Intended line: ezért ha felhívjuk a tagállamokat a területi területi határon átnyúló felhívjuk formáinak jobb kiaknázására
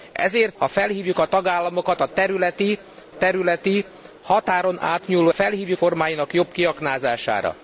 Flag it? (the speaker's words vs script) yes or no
no